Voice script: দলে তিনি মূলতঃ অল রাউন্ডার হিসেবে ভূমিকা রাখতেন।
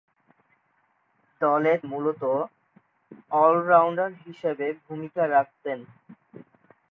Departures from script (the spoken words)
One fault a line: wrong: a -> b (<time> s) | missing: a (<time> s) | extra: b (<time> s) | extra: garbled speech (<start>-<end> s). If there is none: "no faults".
missing: তিনি (1.7 s)